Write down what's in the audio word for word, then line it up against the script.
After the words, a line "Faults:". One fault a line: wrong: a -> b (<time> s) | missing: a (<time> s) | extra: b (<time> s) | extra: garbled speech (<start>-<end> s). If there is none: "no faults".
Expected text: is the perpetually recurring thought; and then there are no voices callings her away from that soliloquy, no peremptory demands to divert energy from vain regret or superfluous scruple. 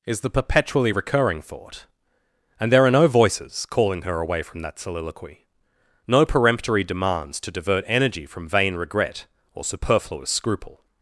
is the perpetually recurring thought; and there are no voices calling her away from that soliloquy, no peremptory demands to divert energy from vain regret or superfluous scruple.
Faults:
missing: then (2.7 s)
wrong: callings -> calling (3.7 s)